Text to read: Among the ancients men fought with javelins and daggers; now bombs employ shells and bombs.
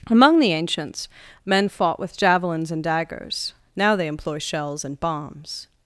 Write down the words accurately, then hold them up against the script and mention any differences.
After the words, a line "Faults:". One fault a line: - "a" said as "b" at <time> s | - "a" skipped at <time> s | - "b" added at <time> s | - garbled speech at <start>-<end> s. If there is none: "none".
Among the ancients men fought with javelins and daggers; now they employ shells and bombs.
Faults:
- "bombs" said as "they" at 4.0 s